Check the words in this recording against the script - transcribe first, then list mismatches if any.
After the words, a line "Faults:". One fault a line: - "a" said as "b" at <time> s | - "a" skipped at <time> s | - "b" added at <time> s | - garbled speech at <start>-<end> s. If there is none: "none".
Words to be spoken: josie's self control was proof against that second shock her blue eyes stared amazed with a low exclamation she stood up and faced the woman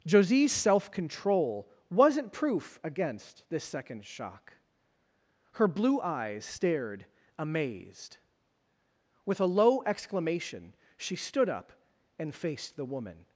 josie's self control wasn't proof against this second shock her blue eyes stared amazed with a low exclamation she stood up and faced the woman
Faults:
- "was" said as "wasn't" at 1.9 s
- "that" said as "this" at 3.5 s